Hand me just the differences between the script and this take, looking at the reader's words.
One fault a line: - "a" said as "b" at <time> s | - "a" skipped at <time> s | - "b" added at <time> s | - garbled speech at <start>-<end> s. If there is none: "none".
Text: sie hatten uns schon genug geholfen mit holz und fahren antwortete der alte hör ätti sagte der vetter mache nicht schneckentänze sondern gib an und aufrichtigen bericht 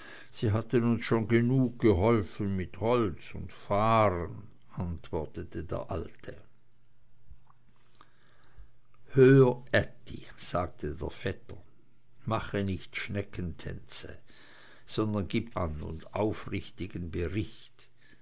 none